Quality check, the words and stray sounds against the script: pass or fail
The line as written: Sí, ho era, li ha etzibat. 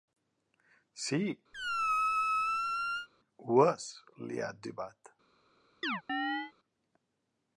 fail